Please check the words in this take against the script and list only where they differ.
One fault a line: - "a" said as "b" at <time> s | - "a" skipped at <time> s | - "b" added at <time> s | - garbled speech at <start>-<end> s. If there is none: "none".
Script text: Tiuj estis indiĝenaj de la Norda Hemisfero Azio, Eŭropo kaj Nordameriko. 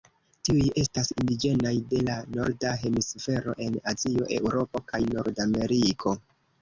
- "estis" said as "estas" at 0.8 s
- "en" added at 3.7 s